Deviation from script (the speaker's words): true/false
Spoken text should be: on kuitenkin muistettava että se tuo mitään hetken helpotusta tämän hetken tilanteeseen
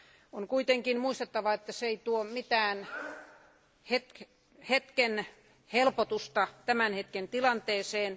true